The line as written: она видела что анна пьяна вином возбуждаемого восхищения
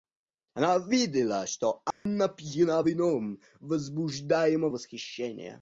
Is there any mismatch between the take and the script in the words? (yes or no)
no